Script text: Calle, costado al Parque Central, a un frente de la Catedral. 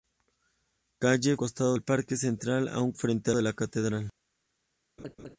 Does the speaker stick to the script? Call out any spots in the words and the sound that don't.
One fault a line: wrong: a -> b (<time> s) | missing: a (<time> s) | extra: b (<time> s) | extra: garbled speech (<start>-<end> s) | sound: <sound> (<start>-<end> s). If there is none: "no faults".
sound: laugh (5.0-5.4 s)